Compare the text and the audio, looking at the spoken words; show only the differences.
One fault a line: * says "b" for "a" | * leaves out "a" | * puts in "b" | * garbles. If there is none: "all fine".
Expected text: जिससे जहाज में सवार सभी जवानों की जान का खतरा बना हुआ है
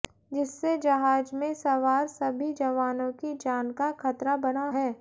* leaves out "हुआ"